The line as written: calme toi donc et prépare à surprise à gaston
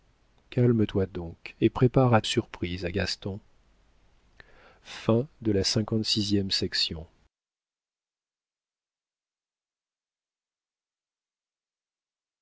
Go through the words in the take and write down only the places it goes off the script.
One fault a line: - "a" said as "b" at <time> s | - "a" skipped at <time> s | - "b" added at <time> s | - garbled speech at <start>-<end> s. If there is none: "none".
none